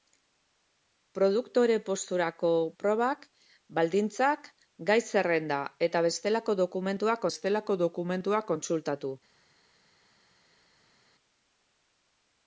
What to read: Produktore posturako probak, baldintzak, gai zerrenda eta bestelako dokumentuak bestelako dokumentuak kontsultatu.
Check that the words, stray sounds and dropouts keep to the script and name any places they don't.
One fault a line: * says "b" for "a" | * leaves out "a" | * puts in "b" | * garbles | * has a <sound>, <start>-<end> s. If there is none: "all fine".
all fine